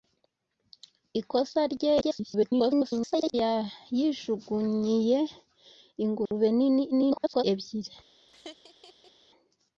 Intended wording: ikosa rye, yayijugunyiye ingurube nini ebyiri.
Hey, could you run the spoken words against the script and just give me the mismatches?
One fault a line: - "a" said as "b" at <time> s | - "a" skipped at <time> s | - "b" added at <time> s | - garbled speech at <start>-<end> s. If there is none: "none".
- garbled speech at 2.0-3.3 s
- garbled speech at 6.9-7.4 s